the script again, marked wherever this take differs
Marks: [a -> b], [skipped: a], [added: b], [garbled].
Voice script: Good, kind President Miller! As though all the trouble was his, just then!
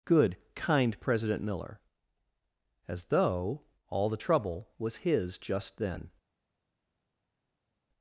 Good, kind President Miller! As though all the trouble was his, just then!